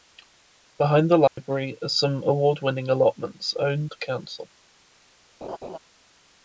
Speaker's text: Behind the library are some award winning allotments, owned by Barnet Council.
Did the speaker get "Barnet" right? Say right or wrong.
wrong